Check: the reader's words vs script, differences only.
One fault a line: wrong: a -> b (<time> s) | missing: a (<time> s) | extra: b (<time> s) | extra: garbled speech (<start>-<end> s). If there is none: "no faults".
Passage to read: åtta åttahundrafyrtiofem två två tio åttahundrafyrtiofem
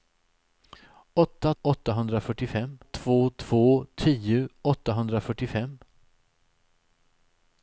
no faults